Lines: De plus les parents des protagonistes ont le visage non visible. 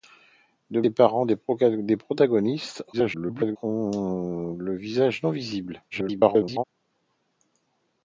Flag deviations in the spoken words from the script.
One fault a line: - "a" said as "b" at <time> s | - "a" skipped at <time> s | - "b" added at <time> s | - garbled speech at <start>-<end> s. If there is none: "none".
- "plus" skipped at 0.8 s
- garbled speech at 2.9-3.6 s
- garbled speech at 5.9-6.6 s